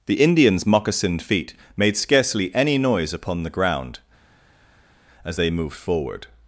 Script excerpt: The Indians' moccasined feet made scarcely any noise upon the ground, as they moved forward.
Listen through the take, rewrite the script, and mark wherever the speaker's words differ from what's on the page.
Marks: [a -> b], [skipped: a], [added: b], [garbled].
The Indians' moccasined feet made scarcely any noise upon the ground, as they moved forward.